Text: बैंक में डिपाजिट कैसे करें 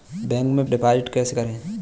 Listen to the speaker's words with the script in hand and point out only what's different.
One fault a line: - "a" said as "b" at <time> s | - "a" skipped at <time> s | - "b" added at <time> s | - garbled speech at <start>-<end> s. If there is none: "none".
none